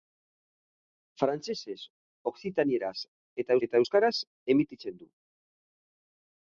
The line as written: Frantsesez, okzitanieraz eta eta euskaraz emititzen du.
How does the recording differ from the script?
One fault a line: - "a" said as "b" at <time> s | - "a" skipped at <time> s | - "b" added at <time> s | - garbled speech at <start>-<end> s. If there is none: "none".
none